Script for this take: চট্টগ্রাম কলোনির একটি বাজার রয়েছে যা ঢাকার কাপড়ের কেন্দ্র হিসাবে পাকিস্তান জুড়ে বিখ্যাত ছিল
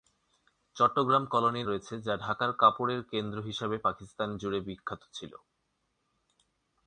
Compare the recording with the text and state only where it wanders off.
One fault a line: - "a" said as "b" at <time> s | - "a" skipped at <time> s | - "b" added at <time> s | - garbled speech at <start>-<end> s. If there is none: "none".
- "একটি বাজার" skipped at 1.7 s